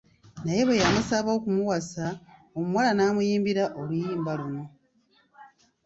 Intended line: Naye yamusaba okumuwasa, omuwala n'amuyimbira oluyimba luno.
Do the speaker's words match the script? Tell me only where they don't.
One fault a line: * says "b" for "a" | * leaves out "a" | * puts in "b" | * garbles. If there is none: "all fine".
* puts in "bwe"